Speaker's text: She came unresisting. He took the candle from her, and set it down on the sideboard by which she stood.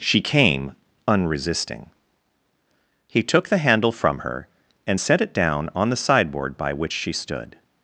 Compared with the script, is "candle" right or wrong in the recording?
wrong